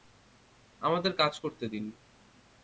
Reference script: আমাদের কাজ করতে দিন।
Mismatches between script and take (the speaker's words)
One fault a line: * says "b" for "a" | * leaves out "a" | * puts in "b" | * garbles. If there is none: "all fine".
all fine